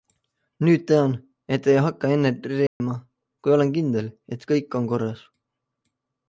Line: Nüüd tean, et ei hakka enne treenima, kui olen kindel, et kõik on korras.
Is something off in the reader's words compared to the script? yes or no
no